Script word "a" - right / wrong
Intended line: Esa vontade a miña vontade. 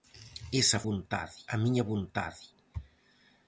right